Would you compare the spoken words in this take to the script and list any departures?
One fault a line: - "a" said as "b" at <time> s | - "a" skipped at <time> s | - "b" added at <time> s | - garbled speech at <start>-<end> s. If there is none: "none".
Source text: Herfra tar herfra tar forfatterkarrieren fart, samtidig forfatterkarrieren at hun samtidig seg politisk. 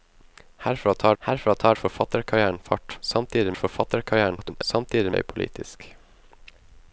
none